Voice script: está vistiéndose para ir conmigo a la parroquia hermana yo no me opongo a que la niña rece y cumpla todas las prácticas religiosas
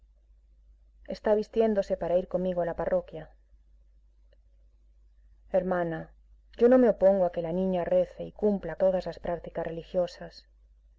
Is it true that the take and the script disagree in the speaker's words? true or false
false